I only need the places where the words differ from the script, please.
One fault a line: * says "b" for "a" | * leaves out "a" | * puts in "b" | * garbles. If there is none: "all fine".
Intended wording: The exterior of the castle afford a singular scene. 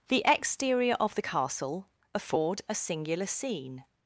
all fine